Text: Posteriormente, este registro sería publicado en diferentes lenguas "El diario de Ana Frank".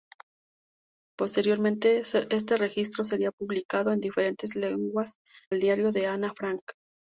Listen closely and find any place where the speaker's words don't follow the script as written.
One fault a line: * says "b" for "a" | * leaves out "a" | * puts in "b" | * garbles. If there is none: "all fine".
all fine